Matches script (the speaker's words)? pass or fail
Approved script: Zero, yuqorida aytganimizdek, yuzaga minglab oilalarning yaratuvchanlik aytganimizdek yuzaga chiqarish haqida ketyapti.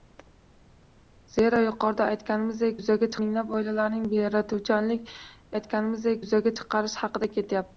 pass